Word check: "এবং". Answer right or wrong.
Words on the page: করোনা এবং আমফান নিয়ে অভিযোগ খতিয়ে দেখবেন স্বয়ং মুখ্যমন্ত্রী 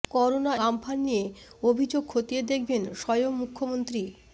wrong